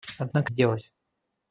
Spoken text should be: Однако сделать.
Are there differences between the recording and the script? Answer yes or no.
no